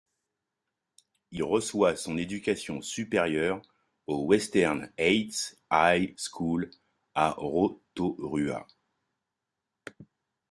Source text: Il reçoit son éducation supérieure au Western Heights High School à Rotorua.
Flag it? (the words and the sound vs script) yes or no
no